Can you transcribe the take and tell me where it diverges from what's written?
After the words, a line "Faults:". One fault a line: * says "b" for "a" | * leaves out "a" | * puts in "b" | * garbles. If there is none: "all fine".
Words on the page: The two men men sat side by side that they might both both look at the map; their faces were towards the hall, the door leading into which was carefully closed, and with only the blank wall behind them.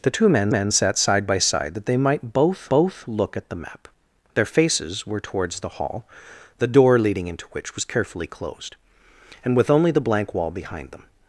The two men men sat side by side that they might both both look at the map; their faces were towards the hall, the door leading into which was carefully closed, and with only the blank wall behind them.
Faults:
all fine